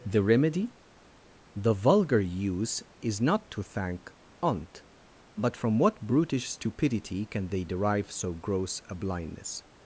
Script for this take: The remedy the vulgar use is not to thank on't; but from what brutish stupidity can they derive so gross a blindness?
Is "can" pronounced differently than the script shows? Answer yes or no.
no